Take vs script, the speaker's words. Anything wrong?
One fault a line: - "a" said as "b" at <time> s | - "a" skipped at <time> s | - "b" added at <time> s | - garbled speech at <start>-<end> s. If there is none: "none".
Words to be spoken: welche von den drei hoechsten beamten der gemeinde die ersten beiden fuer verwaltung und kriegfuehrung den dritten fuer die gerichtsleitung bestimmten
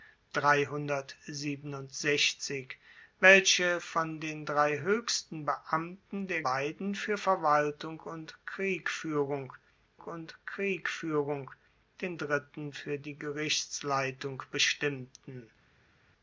- "gemeinde die ersten" skipped at 6.4 s
- "und kriegfuehrung" added at 10.0 s